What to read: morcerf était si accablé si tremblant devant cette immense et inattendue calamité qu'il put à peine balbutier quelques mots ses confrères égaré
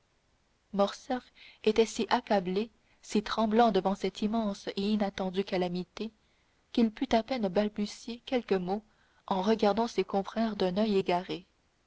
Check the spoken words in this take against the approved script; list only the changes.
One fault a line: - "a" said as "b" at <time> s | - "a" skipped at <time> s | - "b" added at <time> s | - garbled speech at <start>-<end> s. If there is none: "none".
- "en regardant" added at 9.3 s
- "d'un oeil" added at 10.5 s